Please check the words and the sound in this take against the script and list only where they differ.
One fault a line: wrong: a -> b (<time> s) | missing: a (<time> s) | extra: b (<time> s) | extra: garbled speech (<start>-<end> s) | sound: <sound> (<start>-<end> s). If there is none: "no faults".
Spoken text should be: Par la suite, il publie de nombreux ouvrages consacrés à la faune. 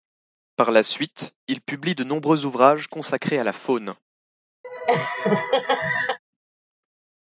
sound: laugh (4.6-6.2 s)